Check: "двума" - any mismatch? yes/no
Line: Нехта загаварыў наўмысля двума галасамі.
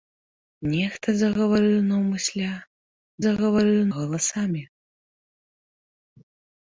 yes